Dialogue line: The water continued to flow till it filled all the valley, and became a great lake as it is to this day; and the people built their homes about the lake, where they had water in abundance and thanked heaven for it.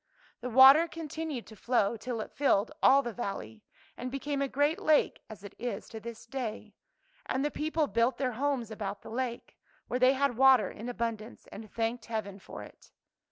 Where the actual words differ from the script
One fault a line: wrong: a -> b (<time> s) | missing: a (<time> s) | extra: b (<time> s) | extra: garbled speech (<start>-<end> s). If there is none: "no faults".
no faults